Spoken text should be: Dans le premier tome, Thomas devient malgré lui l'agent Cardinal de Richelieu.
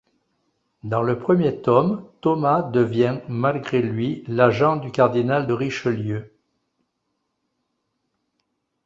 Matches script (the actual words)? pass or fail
fail